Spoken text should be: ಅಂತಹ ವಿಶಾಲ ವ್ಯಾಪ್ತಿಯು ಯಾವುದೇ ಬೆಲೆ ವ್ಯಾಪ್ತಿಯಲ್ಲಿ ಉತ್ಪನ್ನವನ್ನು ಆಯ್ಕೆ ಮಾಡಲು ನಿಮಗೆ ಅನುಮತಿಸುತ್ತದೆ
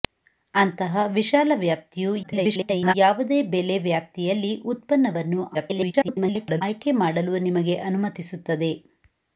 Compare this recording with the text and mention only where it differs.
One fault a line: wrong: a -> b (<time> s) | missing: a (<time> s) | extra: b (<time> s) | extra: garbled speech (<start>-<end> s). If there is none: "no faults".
extra: garbled speech (2.2-2.9 s)
extra: garbled speech (5.5-6.6 s)